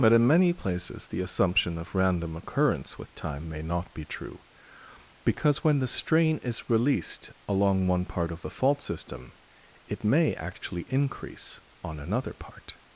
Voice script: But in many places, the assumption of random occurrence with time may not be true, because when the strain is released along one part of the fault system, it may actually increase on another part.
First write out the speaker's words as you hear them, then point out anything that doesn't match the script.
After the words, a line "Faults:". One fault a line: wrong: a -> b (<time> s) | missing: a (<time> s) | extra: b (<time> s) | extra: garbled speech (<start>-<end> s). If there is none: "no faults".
But in many places, the assumption of random occurrence with time may not be true, because when the strain is released along one part of the fault system, it may actually increase on another part.
Faults:
no faults